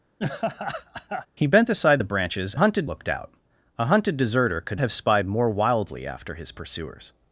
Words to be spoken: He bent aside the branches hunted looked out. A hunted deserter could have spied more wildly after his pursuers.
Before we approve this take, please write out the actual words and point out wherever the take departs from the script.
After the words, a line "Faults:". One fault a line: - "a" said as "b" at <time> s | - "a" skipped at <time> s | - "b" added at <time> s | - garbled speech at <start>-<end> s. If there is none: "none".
He bent aside the branches hunted looked out. A hunted deserter could have spied more wildly after his pursuers.
Faults:
none